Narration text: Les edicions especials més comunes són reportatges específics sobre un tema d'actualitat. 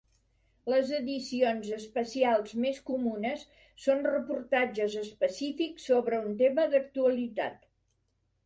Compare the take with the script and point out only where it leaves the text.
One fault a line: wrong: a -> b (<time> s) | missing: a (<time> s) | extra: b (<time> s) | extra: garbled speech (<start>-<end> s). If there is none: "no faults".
no faults